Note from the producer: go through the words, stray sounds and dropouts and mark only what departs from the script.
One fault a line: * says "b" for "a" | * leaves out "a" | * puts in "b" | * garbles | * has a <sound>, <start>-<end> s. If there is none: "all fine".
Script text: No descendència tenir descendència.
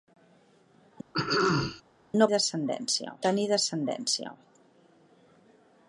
* has a throat clearing, 1.1-1.8 s